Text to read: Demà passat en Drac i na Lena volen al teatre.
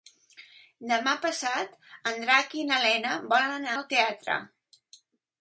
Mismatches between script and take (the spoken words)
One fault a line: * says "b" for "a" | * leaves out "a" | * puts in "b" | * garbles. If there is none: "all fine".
all fine